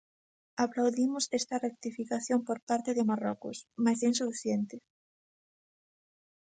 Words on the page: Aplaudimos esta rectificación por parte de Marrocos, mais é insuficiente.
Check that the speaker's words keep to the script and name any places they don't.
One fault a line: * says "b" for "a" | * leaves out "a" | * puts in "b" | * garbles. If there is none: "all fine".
all fine